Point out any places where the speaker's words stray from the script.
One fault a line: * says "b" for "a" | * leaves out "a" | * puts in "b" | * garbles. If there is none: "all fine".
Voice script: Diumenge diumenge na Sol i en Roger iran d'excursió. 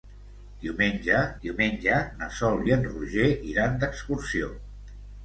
all fine